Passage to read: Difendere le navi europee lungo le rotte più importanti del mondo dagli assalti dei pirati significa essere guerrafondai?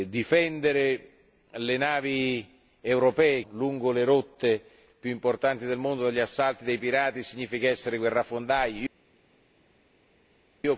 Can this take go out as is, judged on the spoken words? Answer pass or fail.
pass